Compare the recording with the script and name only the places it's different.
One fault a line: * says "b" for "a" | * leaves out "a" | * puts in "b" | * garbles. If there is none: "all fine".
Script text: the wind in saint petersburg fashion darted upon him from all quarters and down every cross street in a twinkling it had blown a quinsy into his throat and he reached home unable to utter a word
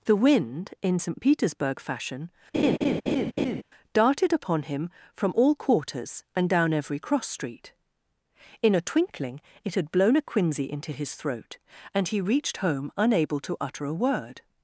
all fine